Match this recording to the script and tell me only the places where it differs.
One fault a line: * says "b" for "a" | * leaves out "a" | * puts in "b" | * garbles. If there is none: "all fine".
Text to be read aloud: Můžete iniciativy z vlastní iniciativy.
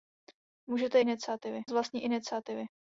all fine